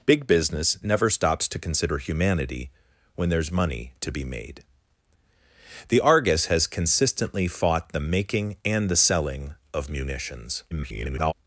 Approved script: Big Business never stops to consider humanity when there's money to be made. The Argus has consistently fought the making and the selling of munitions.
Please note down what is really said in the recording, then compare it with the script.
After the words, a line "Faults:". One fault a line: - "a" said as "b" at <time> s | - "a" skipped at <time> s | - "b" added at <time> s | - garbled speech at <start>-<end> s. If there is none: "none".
Big Business never stops to consider humanity when there's money to be made. The Argus has consistently fought the making and the selling of munitions. [garbled]
Faults:
- garbled speech at 10.7-11.3 s